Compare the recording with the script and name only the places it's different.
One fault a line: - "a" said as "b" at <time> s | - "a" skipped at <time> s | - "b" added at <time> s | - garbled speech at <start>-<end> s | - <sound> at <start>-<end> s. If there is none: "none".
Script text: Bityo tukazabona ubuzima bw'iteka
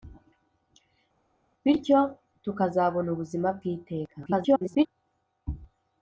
- garbled speech at 4.2-4.9 s